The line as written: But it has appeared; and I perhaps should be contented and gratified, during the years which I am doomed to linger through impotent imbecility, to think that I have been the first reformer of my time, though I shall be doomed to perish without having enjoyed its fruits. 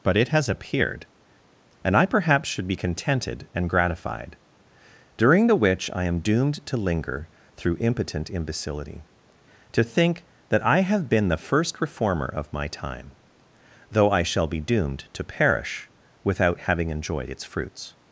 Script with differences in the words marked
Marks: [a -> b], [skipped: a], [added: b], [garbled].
But it has appeared; and I perhaps should be contented and gratified, during the [skipped: years] which I am doomed to linger through impotent imbecility, to think that I have been the first reformer of my time, though I shall be doomed to perish without having enjoyed its fruits.